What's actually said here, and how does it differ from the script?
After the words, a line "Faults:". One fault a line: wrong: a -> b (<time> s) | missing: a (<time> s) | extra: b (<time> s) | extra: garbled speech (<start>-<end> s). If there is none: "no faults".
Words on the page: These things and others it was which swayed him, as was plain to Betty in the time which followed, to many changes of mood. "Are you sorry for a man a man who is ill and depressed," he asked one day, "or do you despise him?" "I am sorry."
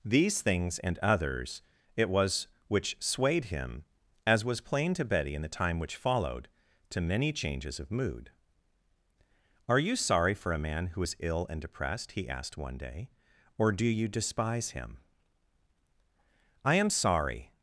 These things and others it was which swayed him, as was plain to Betty in the time which followed, to many changes of mood. "Are you sorry for a man who is ill and depressed," he asked one day, "or do you despise him?" "I am sorry."
Faults:
missing: a man (10.9 s)